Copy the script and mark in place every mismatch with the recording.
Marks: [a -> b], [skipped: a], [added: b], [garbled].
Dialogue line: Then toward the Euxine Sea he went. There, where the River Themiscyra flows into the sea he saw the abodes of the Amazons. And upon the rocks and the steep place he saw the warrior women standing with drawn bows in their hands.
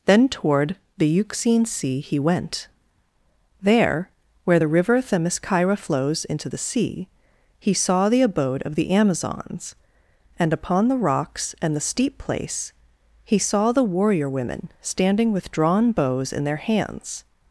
Then toward the Euxine Sea he went. There, where the River Themiscyra flows into the sea he saw the [abodes -> abode] of the Amazons. And upon the rocks and the steep place he saw the warrior women standing with drawn bows in their hands.